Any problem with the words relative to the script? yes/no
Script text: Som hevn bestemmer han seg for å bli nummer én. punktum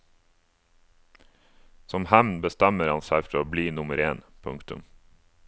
no